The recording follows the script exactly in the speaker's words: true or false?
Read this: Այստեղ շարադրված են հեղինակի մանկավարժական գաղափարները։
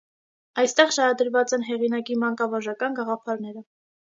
true